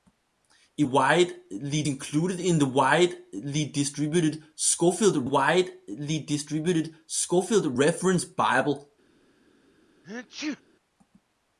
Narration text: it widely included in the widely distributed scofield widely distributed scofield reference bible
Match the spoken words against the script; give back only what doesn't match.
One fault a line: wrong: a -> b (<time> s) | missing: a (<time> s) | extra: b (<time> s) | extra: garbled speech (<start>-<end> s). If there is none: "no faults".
no faults